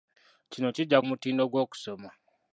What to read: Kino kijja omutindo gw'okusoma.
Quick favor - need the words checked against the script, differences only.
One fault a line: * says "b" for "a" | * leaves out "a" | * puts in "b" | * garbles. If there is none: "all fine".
all fine